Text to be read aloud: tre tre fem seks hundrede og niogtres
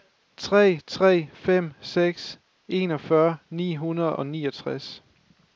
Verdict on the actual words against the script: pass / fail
fail